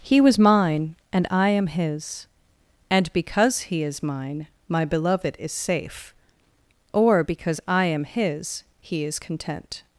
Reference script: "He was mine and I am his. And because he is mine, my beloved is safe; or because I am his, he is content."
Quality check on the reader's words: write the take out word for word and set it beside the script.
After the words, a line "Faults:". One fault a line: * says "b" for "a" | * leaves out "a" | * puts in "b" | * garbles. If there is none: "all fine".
"He was mine and I am his. And because he is mine, my beloved is safe; or because I am his, he is content."
Faults:
all fine